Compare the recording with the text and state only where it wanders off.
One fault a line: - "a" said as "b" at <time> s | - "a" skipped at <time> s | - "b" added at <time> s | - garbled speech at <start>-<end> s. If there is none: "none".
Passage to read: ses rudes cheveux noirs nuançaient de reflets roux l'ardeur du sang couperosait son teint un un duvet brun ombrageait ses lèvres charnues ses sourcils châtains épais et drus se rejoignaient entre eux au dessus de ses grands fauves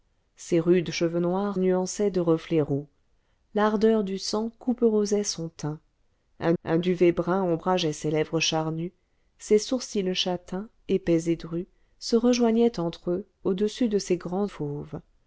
none